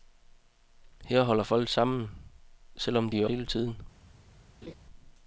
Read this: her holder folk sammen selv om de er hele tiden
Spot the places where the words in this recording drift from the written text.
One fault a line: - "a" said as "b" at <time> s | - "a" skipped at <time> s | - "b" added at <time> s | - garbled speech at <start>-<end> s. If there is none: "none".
none